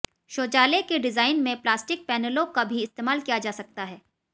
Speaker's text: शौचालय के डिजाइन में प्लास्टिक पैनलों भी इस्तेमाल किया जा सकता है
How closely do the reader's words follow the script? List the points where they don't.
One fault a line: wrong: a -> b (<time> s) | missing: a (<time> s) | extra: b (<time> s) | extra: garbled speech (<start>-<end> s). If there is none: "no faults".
extra: का (2.5 s)